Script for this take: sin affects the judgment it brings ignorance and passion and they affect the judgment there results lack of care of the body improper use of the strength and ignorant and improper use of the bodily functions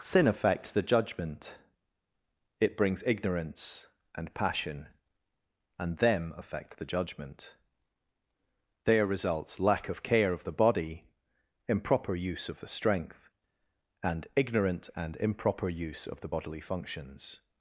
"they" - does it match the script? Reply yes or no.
no